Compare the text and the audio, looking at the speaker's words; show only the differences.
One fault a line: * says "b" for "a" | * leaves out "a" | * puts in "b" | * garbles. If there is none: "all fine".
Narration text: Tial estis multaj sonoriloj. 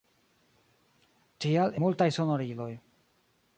* leaves out "estis"